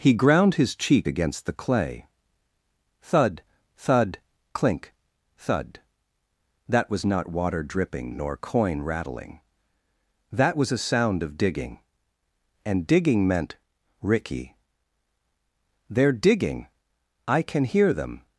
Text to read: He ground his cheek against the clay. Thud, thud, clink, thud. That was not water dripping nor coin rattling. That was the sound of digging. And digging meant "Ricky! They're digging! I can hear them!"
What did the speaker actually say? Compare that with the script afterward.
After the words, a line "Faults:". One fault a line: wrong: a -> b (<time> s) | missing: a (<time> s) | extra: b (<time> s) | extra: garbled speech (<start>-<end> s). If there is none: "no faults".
He ground his cheek against the clay. Thud, thud, clink, thud. That was not water dripping nor coin rattling. That was a sound of digging. And digging meant "Ricky! They're digging! I can hear them!"
Faults:
wrong: the -> a (10.7 s)